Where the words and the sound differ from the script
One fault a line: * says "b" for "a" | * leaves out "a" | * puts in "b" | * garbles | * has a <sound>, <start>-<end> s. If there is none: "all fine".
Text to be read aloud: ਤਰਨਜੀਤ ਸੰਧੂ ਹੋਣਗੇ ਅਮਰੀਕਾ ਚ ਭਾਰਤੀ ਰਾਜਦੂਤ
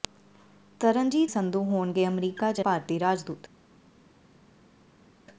all fine